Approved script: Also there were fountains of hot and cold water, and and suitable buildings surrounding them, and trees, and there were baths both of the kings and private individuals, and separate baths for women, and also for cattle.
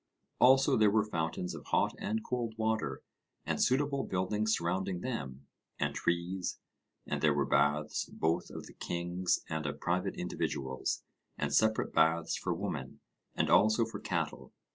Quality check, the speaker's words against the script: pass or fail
fail